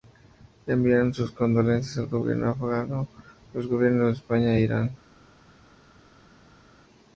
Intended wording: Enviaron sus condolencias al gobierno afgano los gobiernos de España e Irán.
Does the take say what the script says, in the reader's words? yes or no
yes